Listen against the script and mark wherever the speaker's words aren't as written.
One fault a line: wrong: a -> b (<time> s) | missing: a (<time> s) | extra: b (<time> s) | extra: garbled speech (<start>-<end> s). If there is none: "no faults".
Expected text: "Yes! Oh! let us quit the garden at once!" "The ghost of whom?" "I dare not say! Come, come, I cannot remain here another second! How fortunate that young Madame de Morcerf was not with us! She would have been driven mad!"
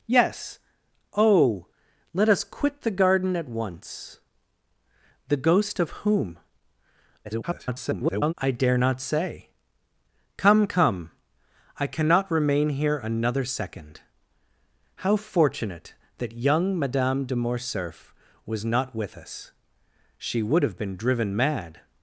extra: garbled speech (7.2-8.3 s)